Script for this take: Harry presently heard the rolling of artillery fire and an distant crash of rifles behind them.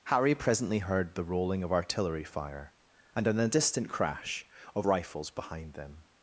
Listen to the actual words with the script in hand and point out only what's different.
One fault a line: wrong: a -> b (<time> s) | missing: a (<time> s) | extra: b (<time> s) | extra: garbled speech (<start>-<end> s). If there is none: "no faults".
no faults